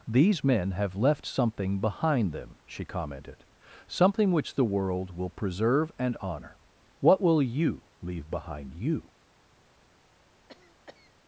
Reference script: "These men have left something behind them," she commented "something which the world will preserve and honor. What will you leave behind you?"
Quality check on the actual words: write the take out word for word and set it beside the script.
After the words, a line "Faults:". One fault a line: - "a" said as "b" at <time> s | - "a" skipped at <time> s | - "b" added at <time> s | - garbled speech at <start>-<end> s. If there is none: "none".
"These men have left something behind them," she commented "something which the world will preserve and honor. What will you leave behind you?"
Faults:
none